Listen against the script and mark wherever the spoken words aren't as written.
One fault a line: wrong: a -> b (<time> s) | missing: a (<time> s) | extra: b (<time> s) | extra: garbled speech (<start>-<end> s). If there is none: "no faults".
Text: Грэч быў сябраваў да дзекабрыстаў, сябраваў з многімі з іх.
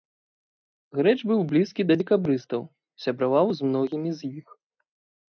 wrong: сябраваў -> блізкі (1.5 s)